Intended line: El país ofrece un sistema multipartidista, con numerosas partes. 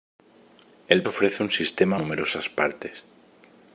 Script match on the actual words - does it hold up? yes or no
no